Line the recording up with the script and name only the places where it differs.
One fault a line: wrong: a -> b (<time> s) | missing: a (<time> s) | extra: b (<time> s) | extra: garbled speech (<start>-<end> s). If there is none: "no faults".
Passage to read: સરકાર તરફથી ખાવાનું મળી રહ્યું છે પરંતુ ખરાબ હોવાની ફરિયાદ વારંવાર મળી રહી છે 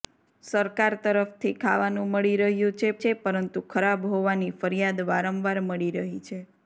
extra: છે (3.0 s)